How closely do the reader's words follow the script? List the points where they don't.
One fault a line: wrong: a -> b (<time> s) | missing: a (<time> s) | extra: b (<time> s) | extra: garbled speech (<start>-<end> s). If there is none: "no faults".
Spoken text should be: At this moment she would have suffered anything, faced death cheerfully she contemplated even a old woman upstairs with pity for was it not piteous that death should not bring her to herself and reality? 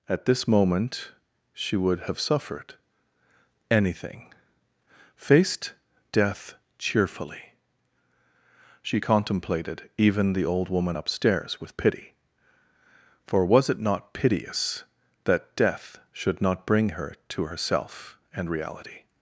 wrong: a -> the (10.3 s)